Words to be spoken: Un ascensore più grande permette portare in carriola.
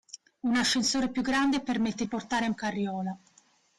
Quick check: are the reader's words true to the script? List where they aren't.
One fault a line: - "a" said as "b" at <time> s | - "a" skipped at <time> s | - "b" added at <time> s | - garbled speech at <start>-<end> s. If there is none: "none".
none